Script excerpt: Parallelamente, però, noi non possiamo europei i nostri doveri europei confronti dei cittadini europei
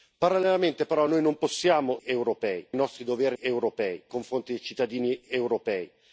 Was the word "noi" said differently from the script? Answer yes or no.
no